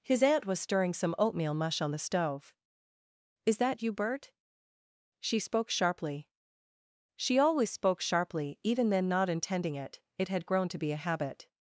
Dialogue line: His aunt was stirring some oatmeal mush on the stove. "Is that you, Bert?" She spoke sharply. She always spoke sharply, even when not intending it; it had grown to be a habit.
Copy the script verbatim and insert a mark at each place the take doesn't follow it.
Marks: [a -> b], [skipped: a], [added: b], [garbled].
His aunt was stirring some oatmeal mush on the stove. "Is that you, Bert?" She spoke sharply. She always spoke sharply, even [when -> then] not intending it; it had grown to be a habit.